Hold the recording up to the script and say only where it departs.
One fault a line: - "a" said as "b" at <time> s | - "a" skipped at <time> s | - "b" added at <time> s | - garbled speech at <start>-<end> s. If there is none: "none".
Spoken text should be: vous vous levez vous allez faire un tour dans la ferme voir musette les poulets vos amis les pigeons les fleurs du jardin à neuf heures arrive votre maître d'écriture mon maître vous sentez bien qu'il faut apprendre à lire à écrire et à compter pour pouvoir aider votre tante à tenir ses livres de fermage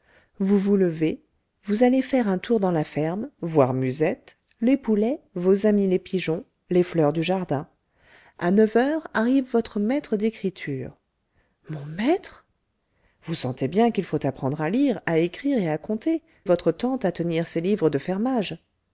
- "pour pouvoir aider" skipped at 16.2 s